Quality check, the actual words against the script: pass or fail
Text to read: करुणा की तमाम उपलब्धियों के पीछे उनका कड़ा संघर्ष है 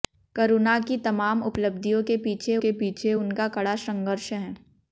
fail